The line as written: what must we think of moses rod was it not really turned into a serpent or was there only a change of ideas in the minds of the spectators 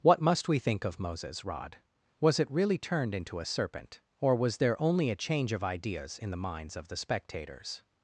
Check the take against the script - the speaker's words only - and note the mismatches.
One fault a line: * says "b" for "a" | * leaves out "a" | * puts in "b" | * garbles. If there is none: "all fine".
* leaves out "not"